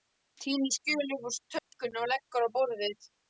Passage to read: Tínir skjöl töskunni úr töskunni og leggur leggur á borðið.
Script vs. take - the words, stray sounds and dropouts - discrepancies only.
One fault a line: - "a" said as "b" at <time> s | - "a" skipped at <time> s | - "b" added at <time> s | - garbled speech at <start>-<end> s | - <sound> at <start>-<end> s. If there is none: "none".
- "töskunni" said as "upp" at 1.2 s
- dropout at 1.6-1.7 s
- "leggur" skipped at 2.5 s